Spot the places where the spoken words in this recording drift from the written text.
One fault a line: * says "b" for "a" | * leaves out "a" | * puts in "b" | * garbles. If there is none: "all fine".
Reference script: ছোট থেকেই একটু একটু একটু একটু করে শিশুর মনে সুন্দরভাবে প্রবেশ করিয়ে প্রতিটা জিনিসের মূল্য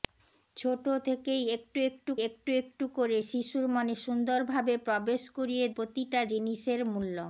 all fine